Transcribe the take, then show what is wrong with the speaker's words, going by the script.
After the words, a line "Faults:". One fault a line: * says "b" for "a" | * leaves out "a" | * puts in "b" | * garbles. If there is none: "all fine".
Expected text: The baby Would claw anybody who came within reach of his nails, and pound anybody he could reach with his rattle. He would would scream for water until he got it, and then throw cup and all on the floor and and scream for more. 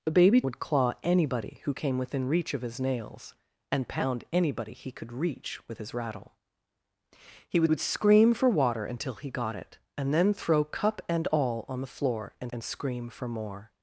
The baby Would claw anybody who came within reach of his nails, and pound anybody he could reach with his rattle. He would would scream for water until he got it, and then throw cup and all on the floor and and scream for more.
Faults:
all fine